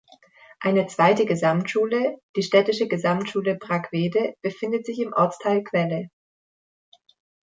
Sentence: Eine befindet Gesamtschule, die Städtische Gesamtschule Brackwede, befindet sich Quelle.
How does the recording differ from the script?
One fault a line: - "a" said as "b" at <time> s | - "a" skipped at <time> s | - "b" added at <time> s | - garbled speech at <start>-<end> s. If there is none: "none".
- "befindet" said as "zweite" at 0.9 s
- "im Ortsteil" added at 5.0 s